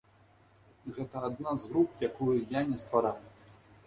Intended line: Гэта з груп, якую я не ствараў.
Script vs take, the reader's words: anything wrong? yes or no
yes